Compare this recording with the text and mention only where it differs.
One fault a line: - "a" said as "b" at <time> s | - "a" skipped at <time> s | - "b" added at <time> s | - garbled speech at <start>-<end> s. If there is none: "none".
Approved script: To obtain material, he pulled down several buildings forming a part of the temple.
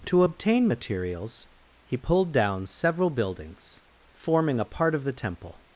- "material" said as "materials" at 0.7 s